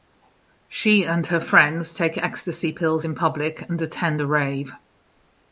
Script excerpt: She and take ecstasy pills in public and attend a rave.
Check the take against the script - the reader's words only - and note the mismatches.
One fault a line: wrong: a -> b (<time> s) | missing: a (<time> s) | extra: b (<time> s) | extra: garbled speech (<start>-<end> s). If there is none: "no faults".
extra: her friends (1.3 s)